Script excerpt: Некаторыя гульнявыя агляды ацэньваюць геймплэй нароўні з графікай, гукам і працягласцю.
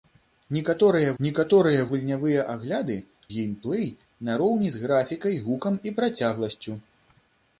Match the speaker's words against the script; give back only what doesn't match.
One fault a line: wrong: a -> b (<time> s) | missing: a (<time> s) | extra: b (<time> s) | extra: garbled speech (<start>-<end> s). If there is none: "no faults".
extra: некаторыя (1.2 s)
missing: ацэньваюць (2.9 s)